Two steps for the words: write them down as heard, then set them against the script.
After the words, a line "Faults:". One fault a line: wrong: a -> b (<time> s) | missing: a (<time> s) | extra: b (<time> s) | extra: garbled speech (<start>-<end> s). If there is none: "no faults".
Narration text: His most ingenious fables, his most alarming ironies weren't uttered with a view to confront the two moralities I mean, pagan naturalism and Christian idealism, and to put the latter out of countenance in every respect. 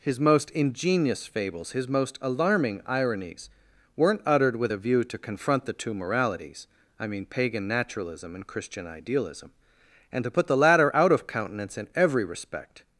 His most ingenious fables, his most alarming ironies weren't uttered with a view to confront the two moralities I mean, pagan naturalism and Christian idealism, and to put the latter out of countenance in every respect.
Faults:
no faults